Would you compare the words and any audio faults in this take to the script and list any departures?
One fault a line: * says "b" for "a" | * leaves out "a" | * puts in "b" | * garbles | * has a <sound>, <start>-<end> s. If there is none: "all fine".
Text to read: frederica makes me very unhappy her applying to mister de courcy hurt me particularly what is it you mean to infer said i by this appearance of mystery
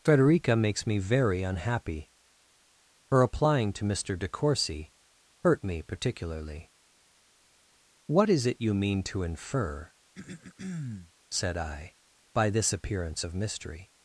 * has a throat clearing, 10.1-11.1 s